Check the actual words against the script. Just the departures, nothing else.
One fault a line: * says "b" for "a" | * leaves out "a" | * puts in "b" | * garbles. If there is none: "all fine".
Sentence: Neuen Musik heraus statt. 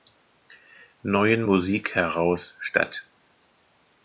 all fine